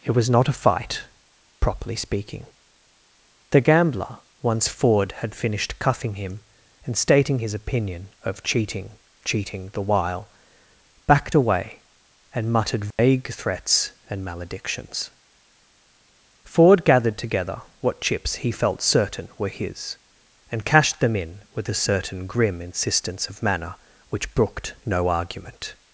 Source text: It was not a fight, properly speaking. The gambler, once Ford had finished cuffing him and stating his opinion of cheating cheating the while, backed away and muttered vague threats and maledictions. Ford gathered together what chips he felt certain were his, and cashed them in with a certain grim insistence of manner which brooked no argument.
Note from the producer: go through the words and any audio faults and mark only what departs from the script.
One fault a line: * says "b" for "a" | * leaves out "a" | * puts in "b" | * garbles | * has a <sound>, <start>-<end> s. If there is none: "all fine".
* has a dropout, 12.9-13.0 s